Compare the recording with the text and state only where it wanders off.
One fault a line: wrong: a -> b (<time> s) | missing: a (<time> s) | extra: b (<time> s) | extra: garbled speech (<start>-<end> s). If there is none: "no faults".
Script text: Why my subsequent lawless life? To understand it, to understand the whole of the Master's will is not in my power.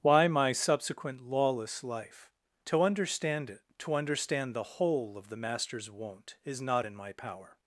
wrong: will -> won't (5.9 s)